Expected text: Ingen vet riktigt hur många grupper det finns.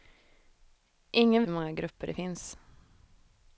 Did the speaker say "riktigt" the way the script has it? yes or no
no